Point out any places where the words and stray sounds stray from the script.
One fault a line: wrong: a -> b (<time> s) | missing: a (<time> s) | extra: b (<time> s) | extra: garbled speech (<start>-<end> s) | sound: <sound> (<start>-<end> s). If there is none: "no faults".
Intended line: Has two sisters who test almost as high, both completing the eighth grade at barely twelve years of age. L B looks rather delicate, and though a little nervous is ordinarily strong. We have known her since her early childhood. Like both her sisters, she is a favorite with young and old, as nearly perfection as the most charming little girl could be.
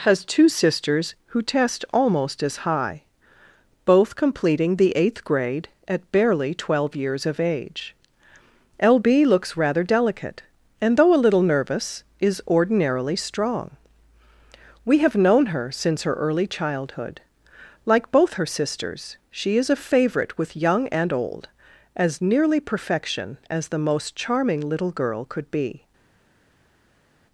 no faults